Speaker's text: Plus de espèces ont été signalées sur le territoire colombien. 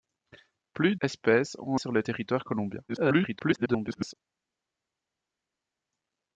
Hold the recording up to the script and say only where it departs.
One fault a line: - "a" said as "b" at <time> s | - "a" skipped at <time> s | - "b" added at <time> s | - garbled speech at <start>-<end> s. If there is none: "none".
- "de" skipped at 0.9 s
- "été signalées" skipped at 1.8 s
- garbled speech at 2.9-4.1 s